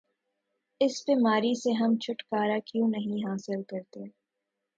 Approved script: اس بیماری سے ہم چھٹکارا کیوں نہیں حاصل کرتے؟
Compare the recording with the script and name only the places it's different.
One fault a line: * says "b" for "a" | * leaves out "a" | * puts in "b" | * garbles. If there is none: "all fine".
all fine